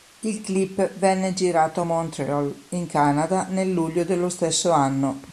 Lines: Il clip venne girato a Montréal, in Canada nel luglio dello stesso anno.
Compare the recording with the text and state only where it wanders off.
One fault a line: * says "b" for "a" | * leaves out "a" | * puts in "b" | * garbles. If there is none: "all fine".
all fine